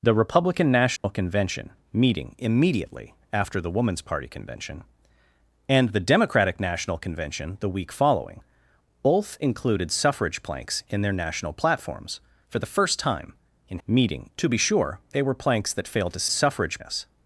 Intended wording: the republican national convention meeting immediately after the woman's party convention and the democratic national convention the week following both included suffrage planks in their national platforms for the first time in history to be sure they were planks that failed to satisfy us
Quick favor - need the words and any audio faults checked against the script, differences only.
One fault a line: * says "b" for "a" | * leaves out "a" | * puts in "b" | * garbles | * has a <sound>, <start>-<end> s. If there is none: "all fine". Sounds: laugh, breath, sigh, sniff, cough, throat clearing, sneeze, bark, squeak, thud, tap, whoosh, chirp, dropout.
* has a dropout, 1.0-1.0 s
* says "meeting" for "history"
* says "suffrage" for "satisfy"